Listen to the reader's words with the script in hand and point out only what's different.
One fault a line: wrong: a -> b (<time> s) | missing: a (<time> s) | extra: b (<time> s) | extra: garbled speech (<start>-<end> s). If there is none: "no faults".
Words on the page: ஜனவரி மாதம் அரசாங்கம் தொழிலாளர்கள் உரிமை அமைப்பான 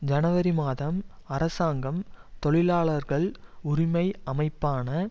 no faults